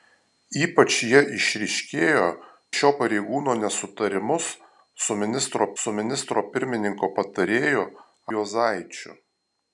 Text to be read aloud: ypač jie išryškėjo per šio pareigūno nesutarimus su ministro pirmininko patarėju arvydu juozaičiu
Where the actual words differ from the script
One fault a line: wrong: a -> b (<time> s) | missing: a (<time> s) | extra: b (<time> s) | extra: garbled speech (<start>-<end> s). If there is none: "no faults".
missing: per (2.2 s)
extra: su ministro (5.8 s)
missing: arvydu (7.9 s)